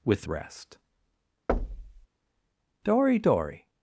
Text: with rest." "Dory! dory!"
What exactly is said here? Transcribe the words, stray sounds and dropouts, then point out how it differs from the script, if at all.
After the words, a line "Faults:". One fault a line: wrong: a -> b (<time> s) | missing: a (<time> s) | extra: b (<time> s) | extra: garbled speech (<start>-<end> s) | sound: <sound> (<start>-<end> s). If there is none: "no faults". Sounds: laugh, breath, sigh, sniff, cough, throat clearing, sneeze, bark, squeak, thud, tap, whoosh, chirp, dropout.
with rest." "Dory! dory!"
Faults:
sound: thud (1.5-2.1 s)